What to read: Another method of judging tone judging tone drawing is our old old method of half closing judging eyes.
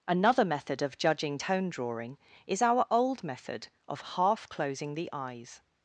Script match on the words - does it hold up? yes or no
no